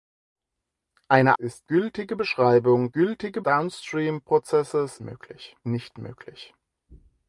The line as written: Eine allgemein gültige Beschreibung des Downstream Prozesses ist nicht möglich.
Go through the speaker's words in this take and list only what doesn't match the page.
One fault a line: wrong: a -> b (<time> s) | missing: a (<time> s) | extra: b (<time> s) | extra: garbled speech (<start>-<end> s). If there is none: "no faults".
wrong: allgemein -> ist (1.3 s)
wrong: des -> gültige (2.9 s)
wrong: ist -> möglich (5.0 s)